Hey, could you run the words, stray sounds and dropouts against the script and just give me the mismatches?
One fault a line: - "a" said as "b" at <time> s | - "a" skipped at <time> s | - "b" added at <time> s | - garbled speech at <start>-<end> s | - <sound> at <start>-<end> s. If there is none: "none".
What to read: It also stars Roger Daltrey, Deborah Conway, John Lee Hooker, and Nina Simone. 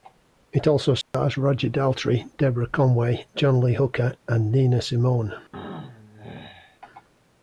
- dropout at 1.0-1.1 s
- throat clearing at 5.5-6.8 s